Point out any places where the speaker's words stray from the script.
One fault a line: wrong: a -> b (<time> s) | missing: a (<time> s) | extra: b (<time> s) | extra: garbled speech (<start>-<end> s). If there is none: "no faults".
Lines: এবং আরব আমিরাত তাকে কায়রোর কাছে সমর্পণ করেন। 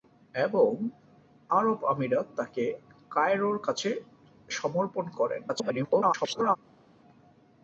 extra: garbled speech (5.5-6.6 s)